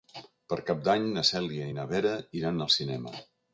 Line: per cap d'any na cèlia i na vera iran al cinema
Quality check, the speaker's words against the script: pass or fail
pass